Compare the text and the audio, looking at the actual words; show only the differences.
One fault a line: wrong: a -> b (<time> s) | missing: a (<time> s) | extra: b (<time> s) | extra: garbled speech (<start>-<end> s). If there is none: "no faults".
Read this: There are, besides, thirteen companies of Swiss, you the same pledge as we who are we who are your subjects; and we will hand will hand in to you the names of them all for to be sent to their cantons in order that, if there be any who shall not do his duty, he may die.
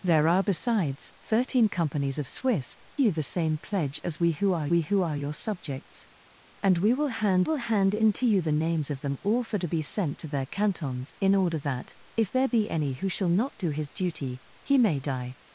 no faults